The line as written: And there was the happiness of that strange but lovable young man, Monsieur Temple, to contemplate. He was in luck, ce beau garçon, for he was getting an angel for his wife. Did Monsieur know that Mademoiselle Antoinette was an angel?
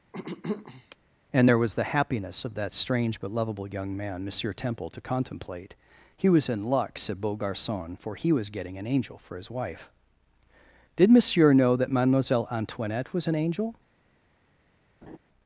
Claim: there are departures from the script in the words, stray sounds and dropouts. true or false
true